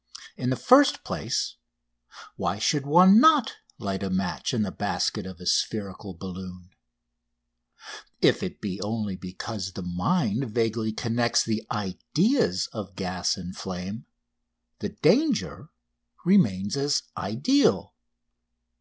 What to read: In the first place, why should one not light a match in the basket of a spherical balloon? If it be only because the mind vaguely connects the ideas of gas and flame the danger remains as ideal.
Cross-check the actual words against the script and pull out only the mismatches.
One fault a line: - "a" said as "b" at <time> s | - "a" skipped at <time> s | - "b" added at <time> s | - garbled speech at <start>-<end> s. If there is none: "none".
none